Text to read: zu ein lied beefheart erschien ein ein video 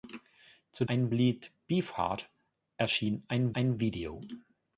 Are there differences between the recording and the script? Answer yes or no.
no